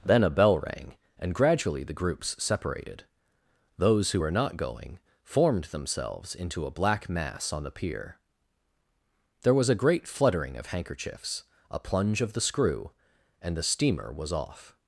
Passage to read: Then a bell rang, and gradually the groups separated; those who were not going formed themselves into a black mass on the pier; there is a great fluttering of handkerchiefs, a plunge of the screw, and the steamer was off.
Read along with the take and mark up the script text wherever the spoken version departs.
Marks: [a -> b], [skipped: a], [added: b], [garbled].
Then a bell rang, and gradually the groups separated; those who were not going formed themselves into a black mass on the pier; there [is -> was] a great fluttering of handkerchiefs, a plunge of the screw, and the steamer was off.